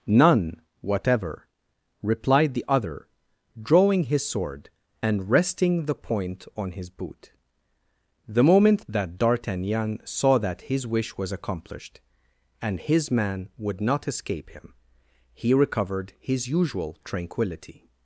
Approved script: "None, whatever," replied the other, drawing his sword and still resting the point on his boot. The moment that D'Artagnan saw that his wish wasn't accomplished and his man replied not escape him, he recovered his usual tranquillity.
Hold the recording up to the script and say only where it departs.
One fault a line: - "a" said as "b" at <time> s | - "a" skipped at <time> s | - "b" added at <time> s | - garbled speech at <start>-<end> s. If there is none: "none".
- "still" skipped at 5.3 s
- "wasn't" said as "was" at 11.2 s
- "replied" said as "would" at 13.6 s